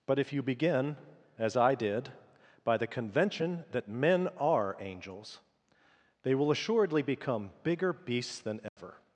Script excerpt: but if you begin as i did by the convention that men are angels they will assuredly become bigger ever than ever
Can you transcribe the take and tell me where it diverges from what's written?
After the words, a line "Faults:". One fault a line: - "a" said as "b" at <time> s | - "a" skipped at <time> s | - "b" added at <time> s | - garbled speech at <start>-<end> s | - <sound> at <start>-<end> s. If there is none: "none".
but if you begin as i did by the convention that men are angels they will assuredly become bigger beasts than ever
Faults:
- "ever" said as "beasts" at 7.9 s
- dropout at 8.7-8.8 s